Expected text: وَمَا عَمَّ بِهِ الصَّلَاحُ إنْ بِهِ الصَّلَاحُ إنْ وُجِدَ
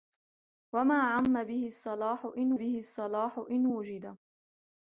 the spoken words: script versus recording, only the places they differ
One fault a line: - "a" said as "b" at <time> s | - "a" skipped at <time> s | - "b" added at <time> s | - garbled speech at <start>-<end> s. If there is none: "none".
none